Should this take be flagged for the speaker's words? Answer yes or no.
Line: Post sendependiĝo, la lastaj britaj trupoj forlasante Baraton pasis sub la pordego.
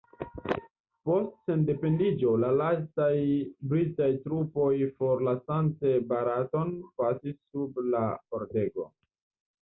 no